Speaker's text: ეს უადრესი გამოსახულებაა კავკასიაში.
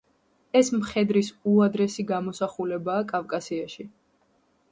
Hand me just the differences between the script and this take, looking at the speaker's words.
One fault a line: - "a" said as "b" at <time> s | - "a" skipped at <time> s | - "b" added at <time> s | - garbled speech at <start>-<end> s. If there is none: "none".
- "მხედრის" added at 0.8 s